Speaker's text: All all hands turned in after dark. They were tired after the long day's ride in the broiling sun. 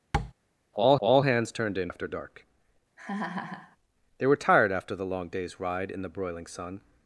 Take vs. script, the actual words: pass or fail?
pass